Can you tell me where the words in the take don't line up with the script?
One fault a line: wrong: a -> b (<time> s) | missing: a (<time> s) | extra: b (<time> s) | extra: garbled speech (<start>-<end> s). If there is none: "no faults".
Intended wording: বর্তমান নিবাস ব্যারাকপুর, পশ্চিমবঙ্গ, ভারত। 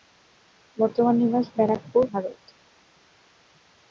missing: পশ্চিমবঙ্গ (2.0 s)